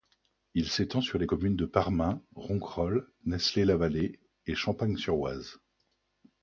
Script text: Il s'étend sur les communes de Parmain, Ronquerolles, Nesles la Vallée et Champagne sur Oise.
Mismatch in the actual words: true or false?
false